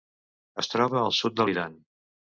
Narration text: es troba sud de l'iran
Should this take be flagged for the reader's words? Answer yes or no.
yes